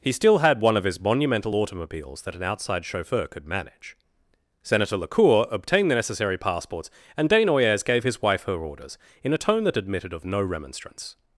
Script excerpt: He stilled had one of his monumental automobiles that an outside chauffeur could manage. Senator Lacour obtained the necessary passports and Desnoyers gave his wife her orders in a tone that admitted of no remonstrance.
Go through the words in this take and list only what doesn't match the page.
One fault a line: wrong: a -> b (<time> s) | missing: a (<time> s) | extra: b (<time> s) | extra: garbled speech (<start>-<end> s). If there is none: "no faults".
wrong: stilled -> still (0.1 s)